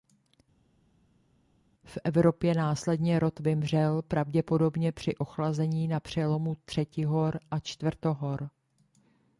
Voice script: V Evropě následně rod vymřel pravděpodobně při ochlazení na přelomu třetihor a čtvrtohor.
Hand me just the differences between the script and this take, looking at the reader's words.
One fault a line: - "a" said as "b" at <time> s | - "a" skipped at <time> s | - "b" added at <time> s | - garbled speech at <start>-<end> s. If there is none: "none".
none